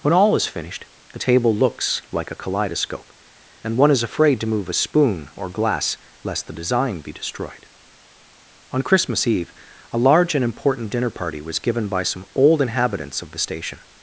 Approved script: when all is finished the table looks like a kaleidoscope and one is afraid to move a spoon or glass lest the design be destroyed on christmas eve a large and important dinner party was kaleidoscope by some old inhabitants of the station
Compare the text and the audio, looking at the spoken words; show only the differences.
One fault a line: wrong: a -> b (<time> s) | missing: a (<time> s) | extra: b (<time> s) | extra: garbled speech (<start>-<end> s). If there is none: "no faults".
wrong: kaleidoscope -> given (11.6 s)